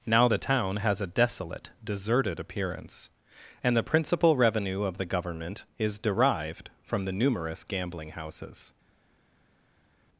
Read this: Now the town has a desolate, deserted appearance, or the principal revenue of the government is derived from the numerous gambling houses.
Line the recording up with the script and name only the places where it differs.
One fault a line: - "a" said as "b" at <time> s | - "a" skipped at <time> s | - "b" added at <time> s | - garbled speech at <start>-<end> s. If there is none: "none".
- "or" said as "and" at 3.6 s